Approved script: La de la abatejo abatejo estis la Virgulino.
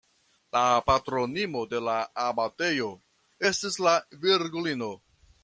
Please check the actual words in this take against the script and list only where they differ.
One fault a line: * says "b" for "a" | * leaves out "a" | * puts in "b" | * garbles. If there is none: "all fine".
* puts in "patronino"
* leaves out "abatejo"